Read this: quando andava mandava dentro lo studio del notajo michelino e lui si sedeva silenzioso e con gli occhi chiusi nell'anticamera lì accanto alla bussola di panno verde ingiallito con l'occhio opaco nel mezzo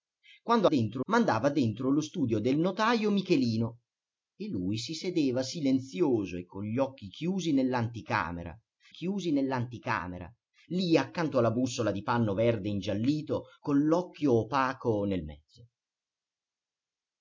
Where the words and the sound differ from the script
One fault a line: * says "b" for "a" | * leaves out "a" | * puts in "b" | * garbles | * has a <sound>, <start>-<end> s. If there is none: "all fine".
* says "dentro" for "andava"
* puts in "chiusi nell'anticamera"